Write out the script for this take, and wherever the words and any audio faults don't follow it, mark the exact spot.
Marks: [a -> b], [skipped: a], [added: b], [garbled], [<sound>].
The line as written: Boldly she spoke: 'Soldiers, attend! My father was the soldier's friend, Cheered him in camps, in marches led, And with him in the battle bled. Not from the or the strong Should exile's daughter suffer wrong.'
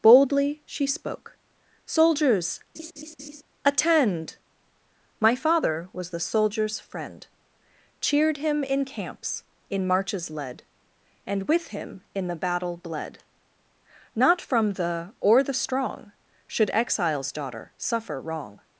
Boldly she spoke: 'Soldiers, [laugh] attend! My father was the soldier's friend, Cheered him in camps, in marches led, And with him in the battle bled. Not from the or the strong Should exile's daughter suffer wrong.'